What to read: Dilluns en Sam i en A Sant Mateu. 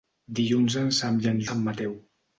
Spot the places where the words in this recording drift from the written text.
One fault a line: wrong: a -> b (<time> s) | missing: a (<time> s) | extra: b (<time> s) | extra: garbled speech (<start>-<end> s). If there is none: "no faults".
no faults